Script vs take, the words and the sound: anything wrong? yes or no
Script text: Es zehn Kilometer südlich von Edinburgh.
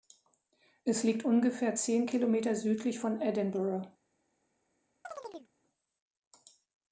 yes